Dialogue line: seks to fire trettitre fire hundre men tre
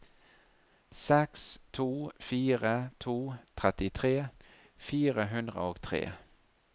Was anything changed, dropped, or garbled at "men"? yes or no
yes